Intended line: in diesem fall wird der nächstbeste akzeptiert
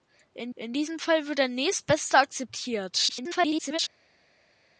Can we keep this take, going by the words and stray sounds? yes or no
no